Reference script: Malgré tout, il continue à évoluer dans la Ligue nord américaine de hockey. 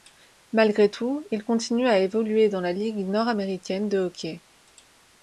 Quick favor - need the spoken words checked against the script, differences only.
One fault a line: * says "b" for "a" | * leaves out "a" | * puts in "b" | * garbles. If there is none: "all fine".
all fine